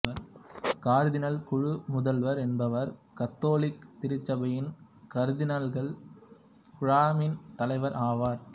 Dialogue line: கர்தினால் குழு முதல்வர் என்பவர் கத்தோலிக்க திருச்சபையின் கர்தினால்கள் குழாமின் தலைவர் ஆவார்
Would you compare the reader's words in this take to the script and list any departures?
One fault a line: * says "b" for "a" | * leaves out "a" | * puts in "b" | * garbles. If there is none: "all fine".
all fine